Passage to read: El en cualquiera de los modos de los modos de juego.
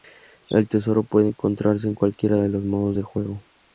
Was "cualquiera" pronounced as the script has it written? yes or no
no